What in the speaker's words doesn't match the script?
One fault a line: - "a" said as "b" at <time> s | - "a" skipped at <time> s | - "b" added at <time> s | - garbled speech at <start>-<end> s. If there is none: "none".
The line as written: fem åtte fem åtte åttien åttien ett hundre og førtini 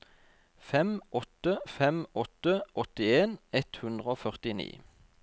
- "åttien" skipped at 3.4 s